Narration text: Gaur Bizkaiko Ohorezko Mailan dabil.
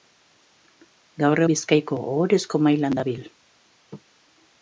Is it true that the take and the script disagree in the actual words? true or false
false